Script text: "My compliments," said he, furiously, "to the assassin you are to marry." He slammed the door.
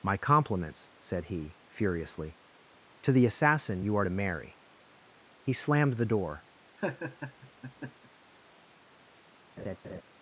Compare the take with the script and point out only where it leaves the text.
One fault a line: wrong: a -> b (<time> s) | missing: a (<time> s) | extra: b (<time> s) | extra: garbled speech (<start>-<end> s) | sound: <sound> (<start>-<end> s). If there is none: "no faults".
sound: laugh (6.8-8.1 s)
sound: laugh (9.6-10.0 s)